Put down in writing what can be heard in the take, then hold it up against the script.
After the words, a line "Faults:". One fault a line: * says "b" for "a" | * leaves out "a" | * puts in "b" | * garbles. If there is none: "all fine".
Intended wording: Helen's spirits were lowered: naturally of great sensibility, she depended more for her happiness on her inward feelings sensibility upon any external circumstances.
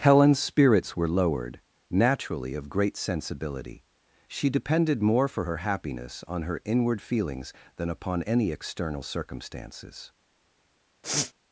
Helen's spirits were lowered: naturally of great sensibility, she depended more for her happiness on her inward feelings than upon any external circumstances.
Faults:
* says "than" for "sensibility"